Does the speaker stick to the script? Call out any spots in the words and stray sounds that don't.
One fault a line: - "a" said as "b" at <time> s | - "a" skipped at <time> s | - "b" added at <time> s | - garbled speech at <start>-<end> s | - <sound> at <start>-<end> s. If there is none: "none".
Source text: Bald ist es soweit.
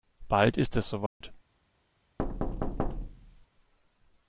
- dropout at 1.1-1.2 s
- thud at 2.2-3.5 s